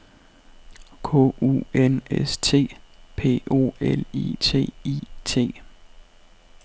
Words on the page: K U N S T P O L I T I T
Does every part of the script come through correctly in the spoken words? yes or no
yes